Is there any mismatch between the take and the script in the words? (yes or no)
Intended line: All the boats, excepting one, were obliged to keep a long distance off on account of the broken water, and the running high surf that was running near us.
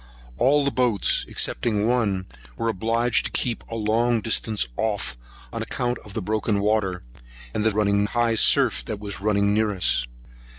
no